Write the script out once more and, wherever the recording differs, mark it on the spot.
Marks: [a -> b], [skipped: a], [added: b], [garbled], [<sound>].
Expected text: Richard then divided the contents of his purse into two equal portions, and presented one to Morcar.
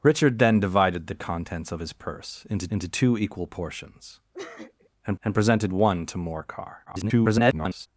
Richard then divided the contents of his purse into [added: into] two equal portions, [sniff] and [added: and] presented one to Morcar. [garbled]